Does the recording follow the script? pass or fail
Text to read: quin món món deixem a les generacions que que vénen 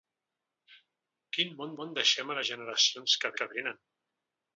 pass